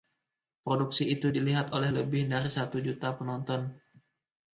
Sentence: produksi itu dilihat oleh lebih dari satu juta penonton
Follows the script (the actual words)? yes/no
yes